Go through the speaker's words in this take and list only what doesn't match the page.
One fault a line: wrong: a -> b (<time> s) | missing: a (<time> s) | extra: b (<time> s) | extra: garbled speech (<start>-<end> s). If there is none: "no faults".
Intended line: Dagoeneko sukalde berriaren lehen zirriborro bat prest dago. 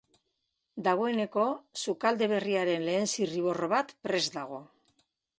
no faults